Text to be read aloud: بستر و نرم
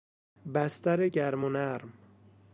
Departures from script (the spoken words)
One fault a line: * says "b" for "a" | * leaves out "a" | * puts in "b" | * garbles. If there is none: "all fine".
* puts in "گرم"